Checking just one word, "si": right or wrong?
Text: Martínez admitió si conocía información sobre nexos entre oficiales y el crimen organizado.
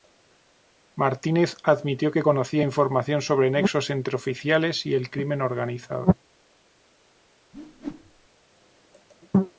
wrong